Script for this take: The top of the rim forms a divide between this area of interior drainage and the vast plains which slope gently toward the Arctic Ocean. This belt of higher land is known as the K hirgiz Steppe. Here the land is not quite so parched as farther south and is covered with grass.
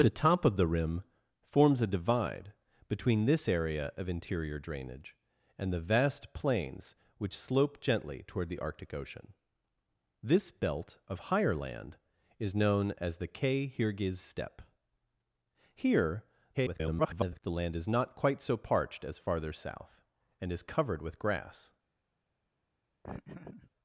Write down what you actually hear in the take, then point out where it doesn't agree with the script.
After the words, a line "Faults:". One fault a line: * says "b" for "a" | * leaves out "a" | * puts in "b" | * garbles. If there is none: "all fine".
The top of the rim forms a divide between this area of interior drainage and the vast plains which slope gently toward the Arctic Ocean. This belt of higher land is known as the K hirgiz Steppe. Here [garbled] the land is not quite so parched as farther south and is covered with grass.
Faults:
* garbles